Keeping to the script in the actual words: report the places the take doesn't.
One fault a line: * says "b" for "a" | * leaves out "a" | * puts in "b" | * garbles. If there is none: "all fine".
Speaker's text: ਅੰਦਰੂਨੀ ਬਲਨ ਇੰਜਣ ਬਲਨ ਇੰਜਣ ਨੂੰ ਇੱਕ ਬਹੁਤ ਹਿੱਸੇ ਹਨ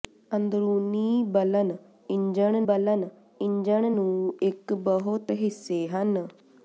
all fine